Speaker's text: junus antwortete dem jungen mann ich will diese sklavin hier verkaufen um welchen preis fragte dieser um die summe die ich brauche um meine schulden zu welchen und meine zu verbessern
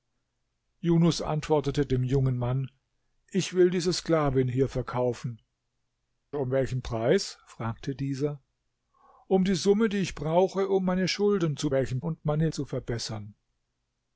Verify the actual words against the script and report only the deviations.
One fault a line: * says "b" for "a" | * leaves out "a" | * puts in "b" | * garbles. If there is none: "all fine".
all fine